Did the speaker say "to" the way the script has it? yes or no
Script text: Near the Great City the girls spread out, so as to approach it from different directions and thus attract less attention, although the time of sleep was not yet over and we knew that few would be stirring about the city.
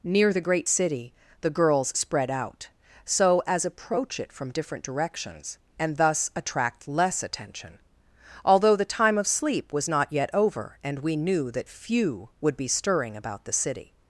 no